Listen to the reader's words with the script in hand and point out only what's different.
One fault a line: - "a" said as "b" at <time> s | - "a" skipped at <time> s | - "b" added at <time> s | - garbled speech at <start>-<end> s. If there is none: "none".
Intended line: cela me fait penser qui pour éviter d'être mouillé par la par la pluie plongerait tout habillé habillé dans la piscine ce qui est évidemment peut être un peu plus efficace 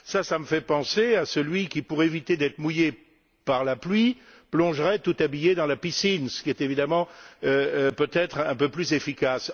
- "à celui" added at 1.1 s
- "par la" skipped at 3.8 s
- "habillé" skipped at 5.5 s